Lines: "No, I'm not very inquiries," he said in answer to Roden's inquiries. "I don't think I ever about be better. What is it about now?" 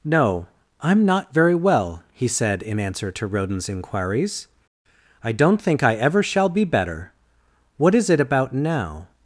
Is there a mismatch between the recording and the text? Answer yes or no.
yes